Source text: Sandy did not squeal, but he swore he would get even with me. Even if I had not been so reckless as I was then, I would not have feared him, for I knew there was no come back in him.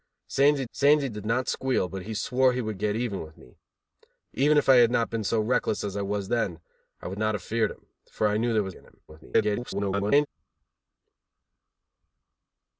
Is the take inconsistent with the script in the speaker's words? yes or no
yes